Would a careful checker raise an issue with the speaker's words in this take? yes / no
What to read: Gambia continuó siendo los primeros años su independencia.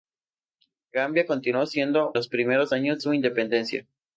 no